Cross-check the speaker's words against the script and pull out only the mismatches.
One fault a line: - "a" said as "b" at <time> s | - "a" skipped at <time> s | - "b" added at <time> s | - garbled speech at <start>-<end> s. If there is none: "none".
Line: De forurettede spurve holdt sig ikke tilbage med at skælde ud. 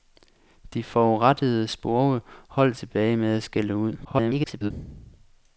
- "sig ikke" skipped at 2.8 s
- garbled speech at 4.0-4.7 s